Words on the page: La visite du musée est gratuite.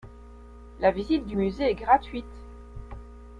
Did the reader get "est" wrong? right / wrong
right